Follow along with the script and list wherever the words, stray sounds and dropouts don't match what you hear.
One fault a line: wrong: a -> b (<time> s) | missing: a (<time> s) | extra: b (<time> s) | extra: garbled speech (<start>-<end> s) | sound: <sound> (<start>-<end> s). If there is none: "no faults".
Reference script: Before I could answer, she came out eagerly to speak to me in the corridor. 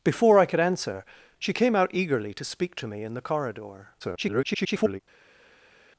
extra: garbled speech (4.0-5.0 s)